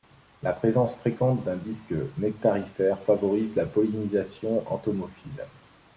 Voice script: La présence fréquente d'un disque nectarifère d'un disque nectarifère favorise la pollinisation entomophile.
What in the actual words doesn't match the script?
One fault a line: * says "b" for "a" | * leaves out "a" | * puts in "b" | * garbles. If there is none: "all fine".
* leaves out "d'un disque nectarifère"